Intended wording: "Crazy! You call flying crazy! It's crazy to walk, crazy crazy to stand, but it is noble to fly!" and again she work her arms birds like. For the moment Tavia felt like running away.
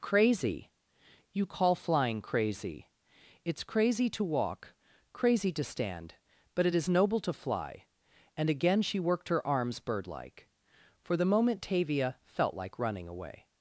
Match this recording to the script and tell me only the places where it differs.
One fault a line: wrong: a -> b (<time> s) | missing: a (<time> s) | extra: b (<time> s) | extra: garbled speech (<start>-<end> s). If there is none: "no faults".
missing: crazy (5.5 s)
wrong: work -> worked (9.0 s)
wrong: birds -> bird (9.8 s)